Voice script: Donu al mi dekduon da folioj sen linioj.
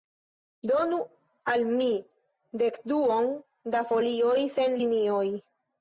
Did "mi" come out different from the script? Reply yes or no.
no